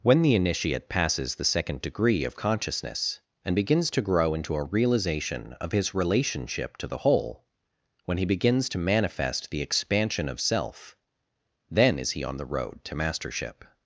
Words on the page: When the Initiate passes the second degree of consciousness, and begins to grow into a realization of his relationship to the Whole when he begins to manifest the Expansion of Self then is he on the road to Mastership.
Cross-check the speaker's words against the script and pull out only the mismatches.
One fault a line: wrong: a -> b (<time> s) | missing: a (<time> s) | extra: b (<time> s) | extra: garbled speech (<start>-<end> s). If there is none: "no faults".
no faults